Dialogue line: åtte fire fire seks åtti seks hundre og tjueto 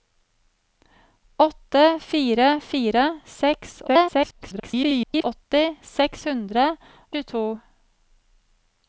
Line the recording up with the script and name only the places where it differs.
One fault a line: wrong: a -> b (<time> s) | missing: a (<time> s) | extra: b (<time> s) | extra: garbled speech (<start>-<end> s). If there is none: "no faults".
extra: garbled speech (3.9-5.2 s)
missing: og (6.6 s)